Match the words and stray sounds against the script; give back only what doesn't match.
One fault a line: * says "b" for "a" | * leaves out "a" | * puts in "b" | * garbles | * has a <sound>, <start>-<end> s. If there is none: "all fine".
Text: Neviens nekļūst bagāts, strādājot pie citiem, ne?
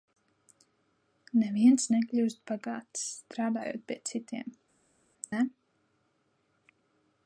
all fine